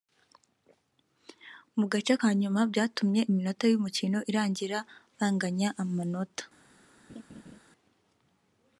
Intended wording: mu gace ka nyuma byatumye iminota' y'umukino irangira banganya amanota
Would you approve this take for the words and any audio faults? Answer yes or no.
no